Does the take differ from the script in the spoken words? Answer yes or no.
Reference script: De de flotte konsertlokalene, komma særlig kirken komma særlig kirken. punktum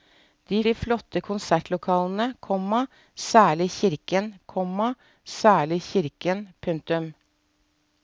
no